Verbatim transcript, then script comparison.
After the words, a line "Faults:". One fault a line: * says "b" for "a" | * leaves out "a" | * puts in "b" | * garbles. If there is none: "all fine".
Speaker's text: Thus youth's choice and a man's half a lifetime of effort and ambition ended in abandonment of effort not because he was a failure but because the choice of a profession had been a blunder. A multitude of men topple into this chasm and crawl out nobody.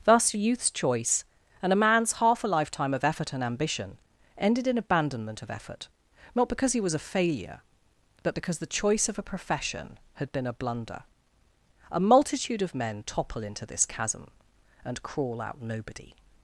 Thus youth's choice and a man's half a lifetime of effort and ambition ended in abandonment of effort not because he was a failure but because the choice of a profession had been a blunder. A multitude of men topple into this chasm and crawl out nobody.
Faults:
all fine